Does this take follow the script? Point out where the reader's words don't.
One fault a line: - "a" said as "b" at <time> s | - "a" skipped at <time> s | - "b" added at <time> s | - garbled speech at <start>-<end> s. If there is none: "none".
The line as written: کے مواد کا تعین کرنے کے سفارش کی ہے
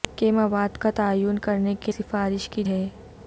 none